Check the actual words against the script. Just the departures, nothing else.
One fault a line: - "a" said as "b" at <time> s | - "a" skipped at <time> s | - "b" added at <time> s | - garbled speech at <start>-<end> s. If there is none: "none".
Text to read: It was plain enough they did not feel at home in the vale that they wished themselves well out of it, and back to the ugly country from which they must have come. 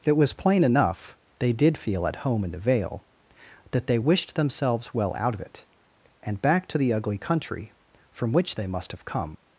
- "not" skipped at 1.8 s